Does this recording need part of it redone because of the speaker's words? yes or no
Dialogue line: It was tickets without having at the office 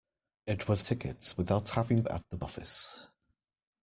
no